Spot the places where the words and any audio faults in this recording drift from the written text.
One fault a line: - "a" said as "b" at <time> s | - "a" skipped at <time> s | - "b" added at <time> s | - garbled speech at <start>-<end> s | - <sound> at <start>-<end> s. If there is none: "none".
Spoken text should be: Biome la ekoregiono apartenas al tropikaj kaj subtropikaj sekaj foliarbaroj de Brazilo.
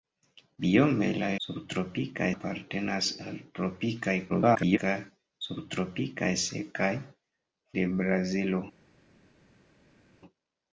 - "ekoregiono" said as "subtropikaj" at 1.5 s
- garbled speech at 4.3-4.8 s
- "foliarbaroj" skipped at 6.9 s